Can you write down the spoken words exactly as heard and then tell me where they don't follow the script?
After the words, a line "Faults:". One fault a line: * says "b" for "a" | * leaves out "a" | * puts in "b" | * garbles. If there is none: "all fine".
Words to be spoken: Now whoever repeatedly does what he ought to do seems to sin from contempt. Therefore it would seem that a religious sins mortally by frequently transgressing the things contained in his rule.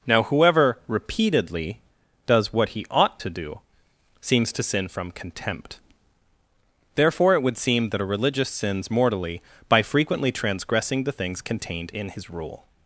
Now whoever repeatedly does what he ought to do seems to sin from contempt. Therefore it would seem that a religious sins mortally by frequently transgressing the things contained in his rule.
Faults:
all fine